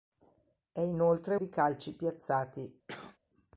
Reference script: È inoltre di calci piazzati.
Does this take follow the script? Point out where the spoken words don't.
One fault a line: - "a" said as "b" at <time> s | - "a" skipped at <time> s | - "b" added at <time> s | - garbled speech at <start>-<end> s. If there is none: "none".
none